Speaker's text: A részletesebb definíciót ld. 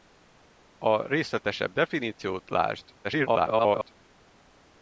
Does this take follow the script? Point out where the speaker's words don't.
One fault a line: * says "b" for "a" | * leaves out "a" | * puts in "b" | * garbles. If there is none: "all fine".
* garbles